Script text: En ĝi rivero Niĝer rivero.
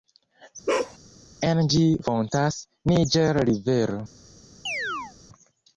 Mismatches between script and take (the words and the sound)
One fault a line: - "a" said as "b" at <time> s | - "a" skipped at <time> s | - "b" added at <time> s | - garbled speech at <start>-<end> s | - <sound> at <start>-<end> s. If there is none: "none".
- bark at 0.7-1.0 s
- "rivero" said as "fontas" at 2.0 s
- chirp at 4.7-5.2 s